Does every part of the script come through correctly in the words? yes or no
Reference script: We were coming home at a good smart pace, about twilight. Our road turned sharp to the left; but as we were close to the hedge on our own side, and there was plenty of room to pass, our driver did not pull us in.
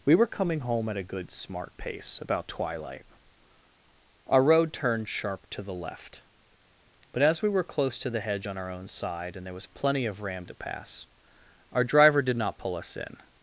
no